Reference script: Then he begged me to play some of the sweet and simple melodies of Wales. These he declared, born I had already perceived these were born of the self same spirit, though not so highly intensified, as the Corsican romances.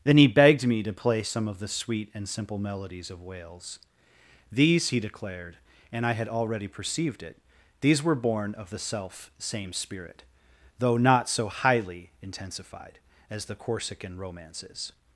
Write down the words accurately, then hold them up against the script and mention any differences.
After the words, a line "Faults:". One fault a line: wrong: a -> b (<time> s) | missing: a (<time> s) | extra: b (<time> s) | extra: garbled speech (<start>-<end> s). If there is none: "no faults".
Then he begged me to play some of the sweet and simple melodies of Wales. These he declared, and I had already perceived it, these were born of the self same spirit, though not so highly intensified, as the Corsican romances.
Faults:
wrong: born -> and (5.9 s)
extra: it (7.2 s)